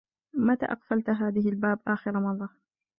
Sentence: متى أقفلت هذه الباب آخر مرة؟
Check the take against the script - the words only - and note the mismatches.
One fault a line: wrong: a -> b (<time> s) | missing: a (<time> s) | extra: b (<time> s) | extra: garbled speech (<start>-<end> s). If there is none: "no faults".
no faults